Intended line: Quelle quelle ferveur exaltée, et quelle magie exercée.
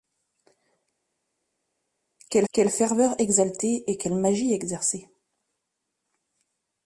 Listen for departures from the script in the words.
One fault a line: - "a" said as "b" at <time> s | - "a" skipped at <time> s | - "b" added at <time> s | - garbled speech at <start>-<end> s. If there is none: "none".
none